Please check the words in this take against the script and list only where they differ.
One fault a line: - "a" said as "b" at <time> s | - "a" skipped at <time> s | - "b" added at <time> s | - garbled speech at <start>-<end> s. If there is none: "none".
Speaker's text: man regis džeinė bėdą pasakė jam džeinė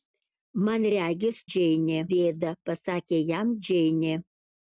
none